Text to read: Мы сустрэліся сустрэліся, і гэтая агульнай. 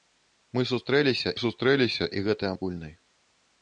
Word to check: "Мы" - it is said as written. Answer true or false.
true